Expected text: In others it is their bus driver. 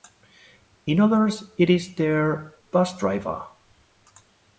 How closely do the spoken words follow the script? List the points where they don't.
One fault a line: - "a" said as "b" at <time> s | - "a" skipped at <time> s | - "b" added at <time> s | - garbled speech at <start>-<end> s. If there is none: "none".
none